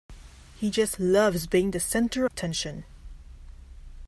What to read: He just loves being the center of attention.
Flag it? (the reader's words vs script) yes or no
yes